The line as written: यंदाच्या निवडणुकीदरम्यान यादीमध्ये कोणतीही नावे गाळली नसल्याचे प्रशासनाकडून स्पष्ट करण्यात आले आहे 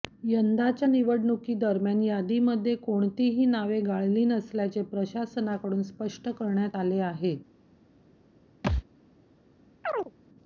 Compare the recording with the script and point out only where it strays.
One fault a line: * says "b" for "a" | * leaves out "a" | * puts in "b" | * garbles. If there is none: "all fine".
all fine